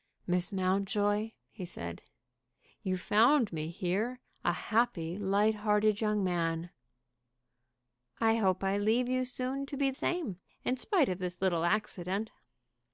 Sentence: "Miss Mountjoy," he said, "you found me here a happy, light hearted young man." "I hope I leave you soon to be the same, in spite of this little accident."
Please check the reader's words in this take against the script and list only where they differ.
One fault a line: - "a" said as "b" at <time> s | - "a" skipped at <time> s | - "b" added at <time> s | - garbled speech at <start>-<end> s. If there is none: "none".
- "the" skipped at 9.9 s